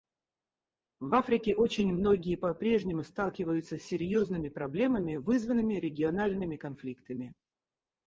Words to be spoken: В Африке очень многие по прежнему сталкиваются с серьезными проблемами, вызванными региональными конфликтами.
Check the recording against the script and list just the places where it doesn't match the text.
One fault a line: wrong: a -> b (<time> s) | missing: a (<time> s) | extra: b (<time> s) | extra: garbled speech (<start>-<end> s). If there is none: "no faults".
no faults